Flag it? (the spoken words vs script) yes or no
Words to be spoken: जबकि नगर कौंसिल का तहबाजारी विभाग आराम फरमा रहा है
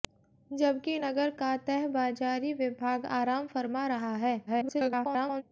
yes